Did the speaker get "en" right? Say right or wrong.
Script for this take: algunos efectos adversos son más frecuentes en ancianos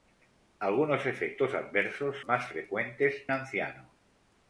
wrong